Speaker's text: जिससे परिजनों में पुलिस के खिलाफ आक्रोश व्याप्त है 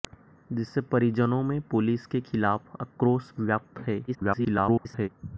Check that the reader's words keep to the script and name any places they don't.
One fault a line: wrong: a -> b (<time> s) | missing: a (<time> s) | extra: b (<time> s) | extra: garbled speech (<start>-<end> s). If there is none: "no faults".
extra: garbled speech (4.1-5.1 s)